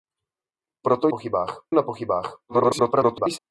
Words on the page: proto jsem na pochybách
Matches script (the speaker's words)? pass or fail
fail